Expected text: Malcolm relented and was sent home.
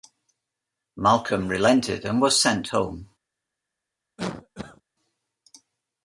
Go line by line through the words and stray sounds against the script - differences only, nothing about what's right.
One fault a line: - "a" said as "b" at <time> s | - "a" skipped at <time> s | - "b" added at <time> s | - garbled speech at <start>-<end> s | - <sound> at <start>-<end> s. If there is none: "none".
- cough at 4.2-4.8 s